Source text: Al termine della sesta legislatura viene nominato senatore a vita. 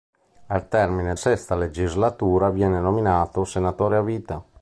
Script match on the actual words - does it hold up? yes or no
no